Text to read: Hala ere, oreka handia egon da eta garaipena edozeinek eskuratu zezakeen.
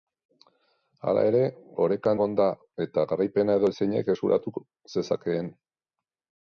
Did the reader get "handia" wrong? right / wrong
wrong